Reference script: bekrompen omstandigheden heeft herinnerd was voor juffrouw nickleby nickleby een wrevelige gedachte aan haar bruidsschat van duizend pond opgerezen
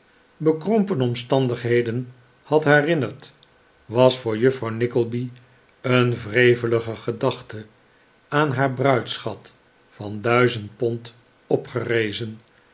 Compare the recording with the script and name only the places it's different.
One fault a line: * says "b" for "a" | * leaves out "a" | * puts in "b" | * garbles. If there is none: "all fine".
* says "had" for "heeft"
* leaves out "nickleby"